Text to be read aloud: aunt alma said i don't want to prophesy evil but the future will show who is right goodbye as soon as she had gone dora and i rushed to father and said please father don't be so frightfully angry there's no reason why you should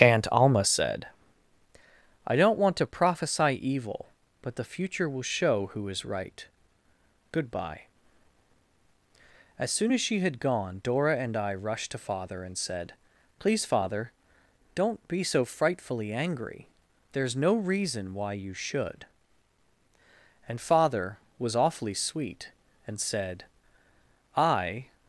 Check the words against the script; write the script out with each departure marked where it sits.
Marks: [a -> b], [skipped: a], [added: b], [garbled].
aunt alma said i don't want to prophesy evil but the future will show who is right goodbye as soon as she had gone dora and i rushed to father and said please father don't be so frightfully angry there's no reason why you should [added: and father was awfully sweet and said i]